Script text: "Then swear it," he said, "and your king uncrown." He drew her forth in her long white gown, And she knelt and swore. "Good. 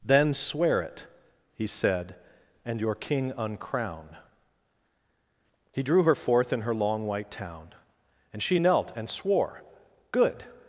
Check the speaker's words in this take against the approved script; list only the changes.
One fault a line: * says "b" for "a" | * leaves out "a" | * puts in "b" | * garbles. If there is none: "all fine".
* says "town" for "gown"